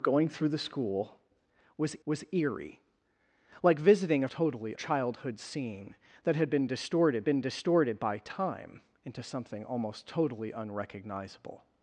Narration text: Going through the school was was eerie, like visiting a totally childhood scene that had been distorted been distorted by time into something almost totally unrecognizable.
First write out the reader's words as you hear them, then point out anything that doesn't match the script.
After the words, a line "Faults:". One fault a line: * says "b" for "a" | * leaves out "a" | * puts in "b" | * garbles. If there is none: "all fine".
Going through the school was was eerie, like visiting a totally childhood scene that had been distorted been distorted by time into something almost totally unrecognizable.
Faults:
all fine